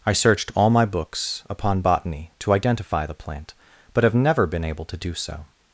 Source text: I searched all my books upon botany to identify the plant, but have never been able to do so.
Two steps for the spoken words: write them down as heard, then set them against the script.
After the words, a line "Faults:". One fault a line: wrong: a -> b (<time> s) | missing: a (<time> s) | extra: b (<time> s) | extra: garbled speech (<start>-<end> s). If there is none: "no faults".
I searched all my books upon botany to identify the plant, but have never been able to do so.
Faults:
no faults